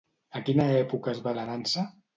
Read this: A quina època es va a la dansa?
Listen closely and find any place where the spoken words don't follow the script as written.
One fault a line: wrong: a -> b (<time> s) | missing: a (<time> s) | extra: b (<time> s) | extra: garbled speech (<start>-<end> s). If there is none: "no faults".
no faults